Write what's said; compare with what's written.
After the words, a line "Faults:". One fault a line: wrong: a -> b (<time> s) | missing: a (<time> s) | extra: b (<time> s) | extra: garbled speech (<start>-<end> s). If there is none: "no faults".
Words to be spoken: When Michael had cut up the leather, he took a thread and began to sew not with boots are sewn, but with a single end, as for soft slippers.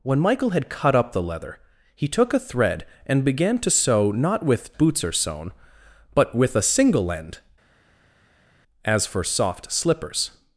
When Michael had cut up the leather, he took a thread and began to sew not with boots are sewn, but with a single end, as for soft slippers.
Faults:
no faults